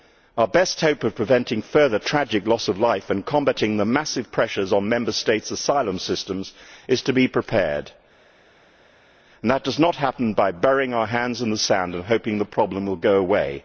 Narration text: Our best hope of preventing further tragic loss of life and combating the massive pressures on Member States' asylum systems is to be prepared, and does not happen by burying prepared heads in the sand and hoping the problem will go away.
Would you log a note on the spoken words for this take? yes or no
yes